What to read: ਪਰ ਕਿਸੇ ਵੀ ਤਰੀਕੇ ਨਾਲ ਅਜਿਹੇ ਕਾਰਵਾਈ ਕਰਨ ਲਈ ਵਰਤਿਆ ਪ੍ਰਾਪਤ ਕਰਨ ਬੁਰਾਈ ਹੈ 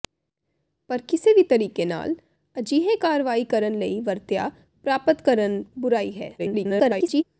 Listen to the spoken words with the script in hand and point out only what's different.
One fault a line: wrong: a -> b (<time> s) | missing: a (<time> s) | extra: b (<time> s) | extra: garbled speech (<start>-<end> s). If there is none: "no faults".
extra: garbled speech (6.4-7.2 s)